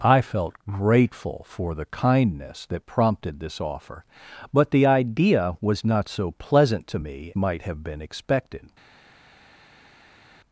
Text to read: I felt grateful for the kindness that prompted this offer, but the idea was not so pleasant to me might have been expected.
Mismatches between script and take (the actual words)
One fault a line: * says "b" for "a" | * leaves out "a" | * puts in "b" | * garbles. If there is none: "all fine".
all fine